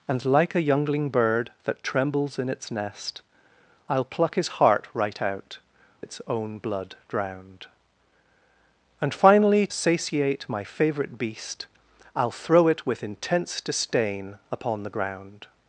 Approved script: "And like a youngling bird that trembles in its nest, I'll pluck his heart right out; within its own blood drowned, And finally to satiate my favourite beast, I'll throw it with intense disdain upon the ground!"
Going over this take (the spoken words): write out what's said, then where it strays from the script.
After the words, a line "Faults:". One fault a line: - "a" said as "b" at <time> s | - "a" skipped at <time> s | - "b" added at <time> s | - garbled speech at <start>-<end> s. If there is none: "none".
"And like a youngling bird that trembles in its nest, I'll pluck his heart right out; its own blood drowned, And finally satiate my favourite beast, I'll throw it with intense disdain upon the ground!"
Faults:
- "within" skipped at 5.6 s
- "to" skipped at 9.7 s